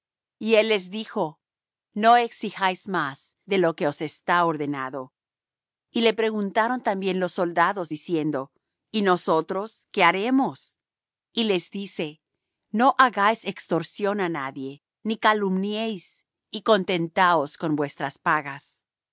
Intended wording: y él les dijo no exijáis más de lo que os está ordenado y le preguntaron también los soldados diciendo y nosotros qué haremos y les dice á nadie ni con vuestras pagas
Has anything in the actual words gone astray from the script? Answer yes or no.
yes